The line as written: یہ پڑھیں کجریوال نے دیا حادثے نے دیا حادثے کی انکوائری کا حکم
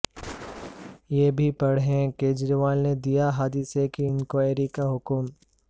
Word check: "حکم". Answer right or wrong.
right